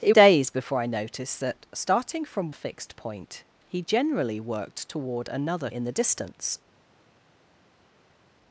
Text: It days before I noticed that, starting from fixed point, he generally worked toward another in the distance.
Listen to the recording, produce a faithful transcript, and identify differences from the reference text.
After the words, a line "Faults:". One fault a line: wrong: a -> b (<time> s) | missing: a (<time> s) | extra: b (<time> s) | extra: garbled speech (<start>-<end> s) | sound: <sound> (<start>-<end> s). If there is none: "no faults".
It days before I noticed that, starting from fixed point, he generally worked toward another in the distance.
Faults:
no faults